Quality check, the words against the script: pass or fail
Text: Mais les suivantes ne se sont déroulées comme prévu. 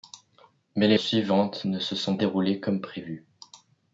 pass